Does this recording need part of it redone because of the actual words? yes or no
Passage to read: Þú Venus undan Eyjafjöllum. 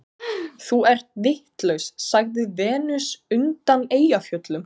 yes